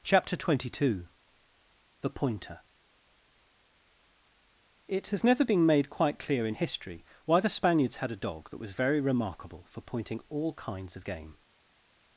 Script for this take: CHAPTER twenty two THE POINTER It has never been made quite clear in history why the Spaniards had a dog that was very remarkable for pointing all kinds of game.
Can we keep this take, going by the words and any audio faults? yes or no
yes